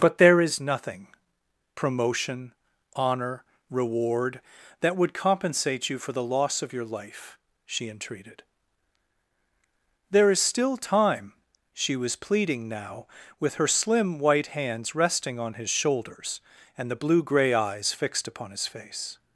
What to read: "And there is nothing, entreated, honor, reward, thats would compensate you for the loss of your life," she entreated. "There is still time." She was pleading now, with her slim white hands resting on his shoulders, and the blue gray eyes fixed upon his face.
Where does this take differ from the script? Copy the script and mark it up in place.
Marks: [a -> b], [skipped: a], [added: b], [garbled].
["And -> But] there is nothing, [entreated, -> promotion] honor, reward, [thats -> that] would compensate you for the loss of your life," she entreated. "There is still time." She was pleading now, with her slim white hands resting on his shoulders, and the blue gray eyes fixed upon his face.